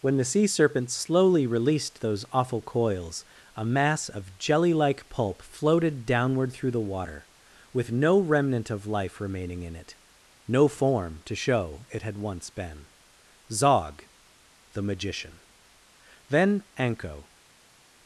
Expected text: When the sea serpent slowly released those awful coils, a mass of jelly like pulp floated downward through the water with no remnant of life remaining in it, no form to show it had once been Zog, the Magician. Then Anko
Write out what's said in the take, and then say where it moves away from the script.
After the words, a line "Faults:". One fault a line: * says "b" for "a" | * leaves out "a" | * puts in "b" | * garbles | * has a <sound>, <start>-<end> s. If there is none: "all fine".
When the sea serpent slowly released those awful coils, a mass of jelly like pulp floated downward through the water with no remnant of life remaining in it, no form to show it had once been Zog, the Magician. Then Anko
Faults:
all fine